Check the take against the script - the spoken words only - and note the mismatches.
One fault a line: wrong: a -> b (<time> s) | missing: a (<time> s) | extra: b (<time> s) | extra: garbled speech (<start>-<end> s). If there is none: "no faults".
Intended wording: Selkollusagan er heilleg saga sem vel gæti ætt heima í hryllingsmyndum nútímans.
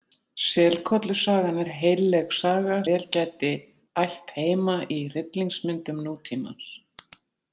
missing: sem (2.8 s)